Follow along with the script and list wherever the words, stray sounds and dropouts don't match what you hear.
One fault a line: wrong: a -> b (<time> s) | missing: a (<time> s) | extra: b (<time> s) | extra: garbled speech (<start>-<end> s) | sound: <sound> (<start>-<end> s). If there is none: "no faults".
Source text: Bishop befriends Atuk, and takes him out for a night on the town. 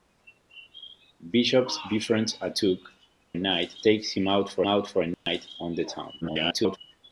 wrong: and -> night (3.4 s)
extra: out for (4.7 s)
sound: dropout (5.1-5.3 s)
extra: garbled speech (6.2-6.8 s)